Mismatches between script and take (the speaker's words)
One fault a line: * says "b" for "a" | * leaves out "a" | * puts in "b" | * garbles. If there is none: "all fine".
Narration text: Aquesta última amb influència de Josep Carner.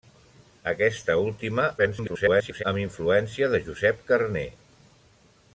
* garbles